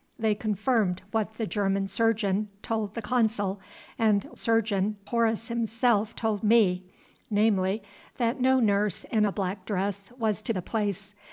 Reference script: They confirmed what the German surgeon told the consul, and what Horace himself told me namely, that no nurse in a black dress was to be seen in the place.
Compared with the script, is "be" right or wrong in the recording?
wrong